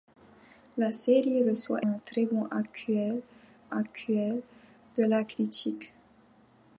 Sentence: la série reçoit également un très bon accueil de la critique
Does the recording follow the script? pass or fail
fail